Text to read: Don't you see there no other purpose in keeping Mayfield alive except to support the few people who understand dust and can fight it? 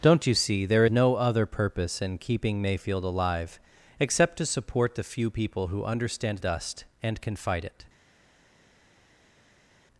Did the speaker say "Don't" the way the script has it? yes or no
yes